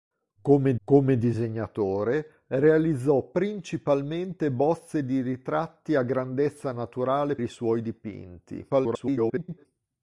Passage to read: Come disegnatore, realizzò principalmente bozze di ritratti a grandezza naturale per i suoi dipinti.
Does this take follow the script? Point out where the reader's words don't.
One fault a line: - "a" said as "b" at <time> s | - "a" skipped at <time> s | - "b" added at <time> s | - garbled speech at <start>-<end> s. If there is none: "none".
- "come" added at 0.8 s
- "per" skipped at 7.4 s
- garbled speech at 8.7-9.7 s